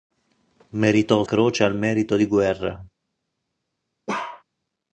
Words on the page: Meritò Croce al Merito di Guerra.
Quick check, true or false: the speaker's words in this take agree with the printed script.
true